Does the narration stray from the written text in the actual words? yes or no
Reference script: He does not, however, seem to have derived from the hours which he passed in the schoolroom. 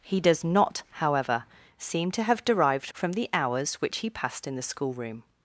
no